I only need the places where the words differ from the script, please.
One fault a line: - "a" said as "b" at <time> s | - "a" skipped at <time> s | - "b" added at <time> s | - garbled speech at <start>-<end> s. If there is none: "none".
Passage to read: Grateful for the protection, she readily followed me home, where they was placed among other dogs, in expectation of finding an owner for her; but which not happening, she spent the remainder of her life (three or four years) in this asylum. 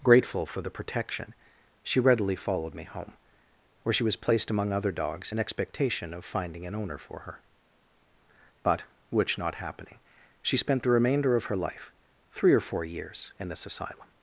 - "they" said as "she" at 3.9 s